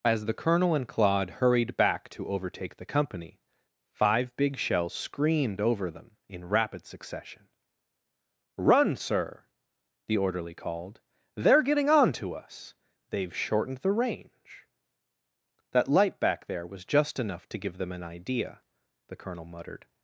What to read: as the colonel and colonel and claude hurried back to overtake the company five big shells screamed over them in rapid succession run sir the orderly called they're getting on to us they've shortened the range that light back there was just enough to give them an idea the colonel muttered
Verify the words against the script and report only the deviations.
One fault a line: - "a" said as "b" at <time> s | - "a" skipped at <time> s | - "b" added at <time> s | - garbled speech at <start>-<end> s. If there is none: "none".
- "colonel and" skipped at 0.9 s